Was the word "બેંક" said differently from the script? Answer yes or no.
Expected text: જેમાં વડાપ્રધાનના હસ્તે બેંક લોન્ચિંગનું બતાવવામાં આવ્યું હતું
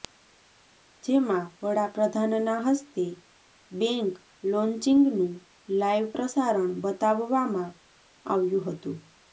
no